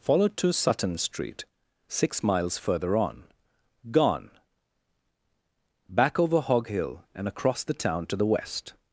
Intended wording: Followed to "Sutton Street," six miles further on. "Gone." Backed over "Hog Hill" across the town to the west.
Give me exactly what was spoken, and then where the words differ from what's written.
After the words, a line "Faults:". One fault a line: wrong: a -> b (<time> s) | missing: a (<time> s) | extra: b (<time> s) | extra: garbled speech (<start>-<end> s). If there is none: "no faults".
Followed to "Sutton Street," six miles further on. "Gone." Back over "Hog Hill" and across the town to the west.
Faults:
wrong: Backed -> Back (5.9 s)
extra: and (7.1 s)